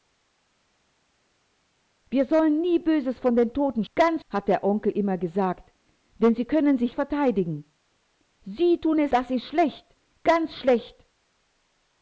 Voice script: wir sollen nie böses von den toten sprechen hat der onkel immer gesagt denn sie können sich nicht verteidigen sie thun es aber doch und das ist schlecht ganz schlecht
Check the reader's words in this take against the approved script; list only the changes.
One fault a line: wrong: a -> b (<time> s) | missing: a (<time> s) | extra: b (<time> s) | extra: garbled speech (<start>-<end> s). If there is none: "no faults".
wrong: sprechen -> ganz (3.9 s)
missing: nicht (6.9 s)
missing: aber doch und (9.1 s)